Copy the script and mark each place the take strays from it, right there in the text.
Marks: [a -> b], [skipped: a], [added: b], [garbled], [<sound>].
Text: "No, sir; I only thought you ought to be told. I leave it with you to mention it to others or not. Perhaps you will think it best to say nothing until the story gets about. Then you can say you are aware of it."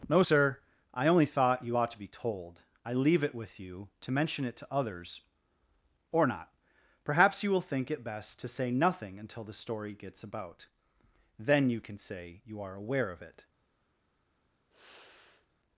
"No, sir; I only thought you ought to be told. I leave it with you to mention it to others or not. Perhaps you will think it best to say nothing until the story gets about. Then you can say you are aware of it." [sigh]